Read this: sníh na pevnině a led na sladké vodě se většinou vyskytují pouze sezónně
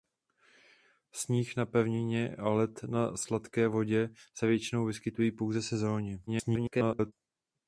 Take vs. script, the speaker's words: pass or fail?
fail